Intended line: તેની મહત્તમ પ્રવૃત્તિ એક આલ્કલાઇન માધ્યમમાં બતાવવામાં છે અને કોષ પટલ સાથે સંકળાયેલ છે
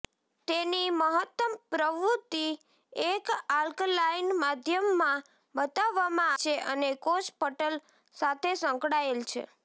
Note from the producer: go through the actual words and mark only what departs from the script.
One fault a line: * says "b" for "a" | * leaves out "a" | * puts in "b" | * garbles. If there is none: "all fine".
all fine